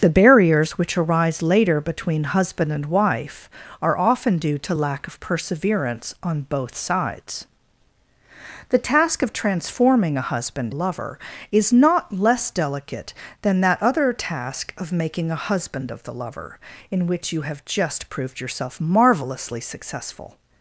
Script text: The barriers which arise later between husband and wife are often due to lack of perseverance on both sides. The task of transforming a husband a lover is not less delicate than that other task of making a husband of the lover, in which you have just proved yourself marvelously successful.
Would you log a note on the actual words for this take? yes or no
no